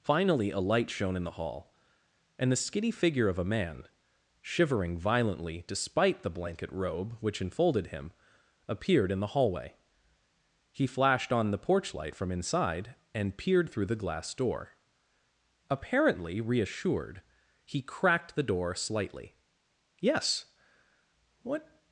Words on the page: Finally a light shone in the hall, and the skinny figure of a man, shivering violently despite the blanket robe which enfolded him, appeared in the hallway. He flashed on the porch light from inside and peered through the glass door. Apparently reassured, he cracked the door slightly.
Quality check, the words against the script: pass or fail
fail